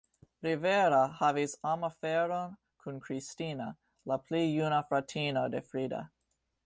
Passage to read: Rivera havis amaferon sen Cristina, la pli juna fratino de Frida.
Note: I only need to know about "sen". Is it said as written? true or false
false